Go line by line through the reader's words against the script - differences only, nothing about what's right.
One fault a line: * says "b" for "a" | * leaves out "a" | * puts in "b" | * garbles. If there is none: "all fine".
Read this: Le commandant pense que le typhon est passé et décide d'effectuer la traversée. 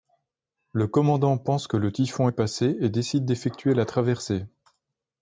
all fine